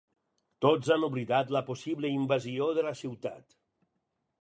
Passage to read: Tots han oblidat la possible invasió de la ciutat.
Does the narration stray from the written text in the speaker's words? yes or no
no